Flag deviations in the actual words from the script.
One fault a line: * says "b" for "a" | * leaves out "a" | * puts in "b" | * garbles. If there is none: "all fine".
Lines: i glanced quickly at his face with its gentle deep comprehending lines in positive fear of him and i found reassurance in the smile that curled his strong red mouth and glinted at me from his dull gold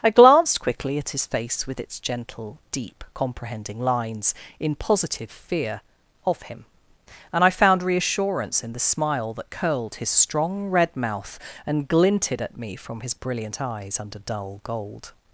* puts in "brilliant eyes under"